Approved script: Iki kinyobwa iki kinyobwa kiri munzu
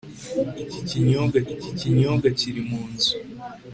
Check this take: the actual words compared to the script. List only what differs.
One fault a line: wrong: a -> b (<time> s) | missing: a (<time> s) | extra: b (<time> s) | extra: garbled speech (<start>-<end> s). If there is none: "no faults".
no faults